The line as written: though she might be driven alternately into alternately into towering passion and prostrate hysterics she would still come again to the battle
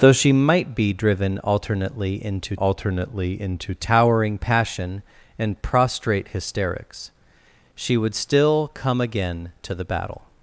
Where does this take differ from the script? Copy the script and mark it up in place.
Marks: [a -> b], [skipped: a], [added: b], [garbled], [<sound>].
though she might be driven alternately into alternately into towering passion and prostrate hysterics she would still come again to the battle